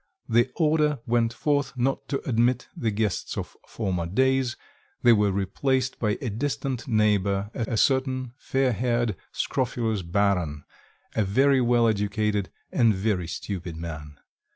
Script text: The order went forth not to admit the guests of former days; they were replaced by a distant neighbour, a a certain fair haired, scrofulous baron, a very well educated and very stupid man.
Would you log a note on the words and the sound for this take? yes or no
no